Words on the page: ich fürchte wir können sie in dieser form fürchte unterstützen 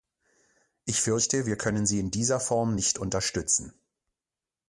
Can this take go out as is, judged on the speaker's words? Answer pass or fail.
fail